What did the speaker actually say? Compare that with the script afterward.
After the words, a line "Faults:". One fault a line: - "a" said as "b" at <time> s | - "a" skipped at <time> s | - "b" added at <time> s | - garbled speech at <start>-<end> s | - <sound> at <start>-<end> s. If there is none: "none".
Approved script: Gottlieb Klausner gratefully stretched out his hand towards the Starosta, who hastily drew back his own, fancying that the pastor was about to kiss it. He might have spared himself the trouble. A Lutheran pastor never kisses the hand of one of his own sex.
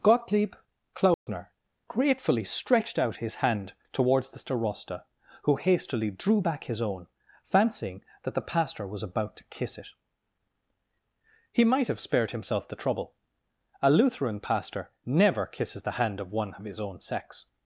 Gottlieb Klausner gratefully stretched out his hand towards the Starosta, who hastily drew back his own, fancying that the pastor was about to kiss it. He might have spared himself the trouble. A Lutheran pastor never kisses the hand of one of his own sex.
Faults:
- dropout at 1.1-1.3 s